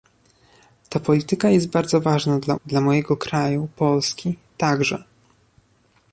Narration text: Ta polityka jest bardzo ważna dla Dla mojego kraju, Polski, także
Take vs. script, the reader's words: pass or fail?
pass